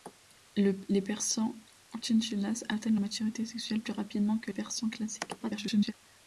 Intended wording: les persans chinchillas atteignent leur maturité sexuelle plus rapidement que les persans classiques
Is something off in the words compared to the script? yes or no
yes